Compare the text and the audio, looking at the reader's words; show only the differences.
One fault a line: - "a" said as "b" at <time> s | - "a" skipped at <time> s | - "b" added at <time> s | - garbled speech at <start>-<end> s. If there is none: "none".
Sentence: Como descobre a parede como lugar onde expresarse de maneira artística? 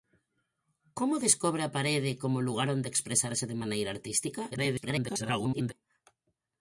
- garbled speech at 4.5-5.7 s